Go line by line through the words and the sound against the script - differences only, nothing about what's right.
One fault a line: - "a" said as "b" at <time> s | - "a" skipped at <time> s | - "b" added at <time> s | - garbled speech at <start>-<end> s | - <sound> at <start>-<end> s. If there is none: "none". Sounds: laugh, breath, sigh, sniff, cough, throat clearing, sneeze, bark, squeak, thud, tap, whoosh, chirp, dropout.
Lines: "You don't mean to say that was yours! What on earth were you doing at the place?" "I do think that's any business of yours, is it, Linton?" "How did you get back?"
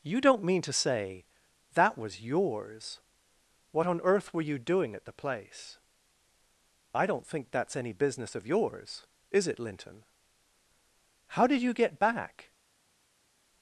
- "do" said as "don't" at 7.1 s